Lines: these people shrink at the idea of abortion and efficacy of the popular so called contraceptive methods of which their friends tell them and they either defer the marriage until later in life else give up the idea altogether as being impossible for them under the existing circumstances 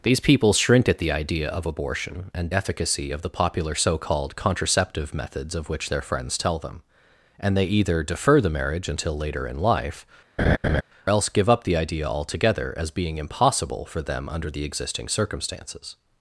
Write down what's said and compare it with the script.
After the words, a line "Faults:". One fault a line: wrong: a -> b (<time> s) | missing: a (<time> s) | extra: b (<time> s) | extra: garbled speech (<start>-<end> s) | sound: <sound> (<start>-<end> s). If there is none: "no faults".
these people shrink at the idea of abortion and efficacy of the popular so called contraceptive methods of which their friends tell them and they either defer the marriage until later in life else give up the idea altogether as being impossible for them under the existing circumstances
Faults:
sound: laugh (10.4-10.8 s)